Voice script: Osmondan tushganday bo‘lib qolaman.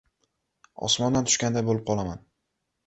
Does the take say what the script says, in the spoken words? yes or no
yes